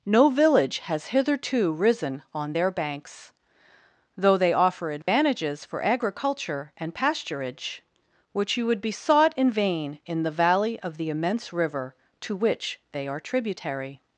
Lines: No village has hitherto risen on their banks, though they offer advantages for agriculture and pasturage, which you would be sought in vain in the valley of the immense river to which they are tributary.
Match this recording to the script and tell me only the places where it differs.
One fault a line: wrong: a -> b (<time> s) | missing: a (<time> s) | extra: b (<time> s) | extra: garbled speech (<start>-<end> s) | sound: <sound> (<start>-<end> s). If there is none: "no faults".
sound: dropout (5.0-5.1 s)